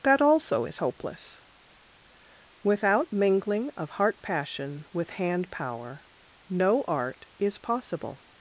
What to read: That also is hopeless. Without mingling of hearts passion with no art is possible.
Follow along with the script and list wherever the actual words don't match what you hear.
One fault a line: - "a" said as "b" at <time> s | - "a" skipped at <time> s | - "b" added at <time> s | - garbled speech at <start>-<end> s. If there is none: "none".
- "hearts" said as "heart" at 3.9 s
- "hand power" added at 5.1 s